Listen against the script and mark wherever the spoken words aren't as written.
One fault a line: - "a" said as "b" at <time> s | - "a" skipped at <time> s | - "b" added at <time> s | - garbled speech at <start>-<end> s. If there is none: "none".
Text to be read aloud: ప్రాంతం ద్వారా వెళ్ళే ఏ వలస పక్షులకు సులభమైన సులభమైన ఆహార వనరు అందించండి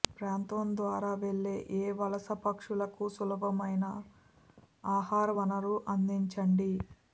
- "సులభమైన" skipped at 3.9 s